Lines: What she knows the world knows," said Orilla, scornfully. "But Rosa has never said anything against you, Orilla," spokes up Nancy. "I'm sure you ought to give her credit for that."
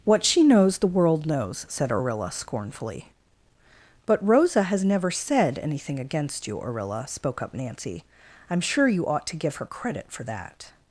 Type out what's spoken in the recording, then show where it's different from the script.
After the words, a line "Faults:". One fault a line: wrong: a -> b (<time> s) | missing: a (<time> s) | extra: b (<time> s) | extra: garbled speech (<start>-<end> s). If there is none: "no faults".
What she knows the world knows," said Orilla, scornfully. "But Rosa has never said anything against you, Orilla," spoke up Nancy. "I'm sure you ought to give her credit for that."
Faults:
wrong: spokes -> spoke (7.1 s)